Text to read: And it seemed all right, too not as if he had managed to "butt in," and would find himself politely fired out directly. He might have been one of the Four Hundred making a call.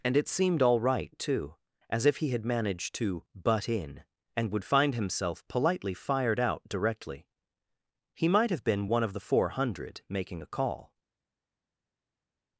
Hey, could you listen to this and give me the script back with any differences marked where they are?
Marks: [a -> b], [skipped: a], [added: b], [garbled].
And it seemed all right, too [skipped: not] as if he had managed to "butt in," and would find himself politely fired out directly. He might have been one of the Four Hundred making a call.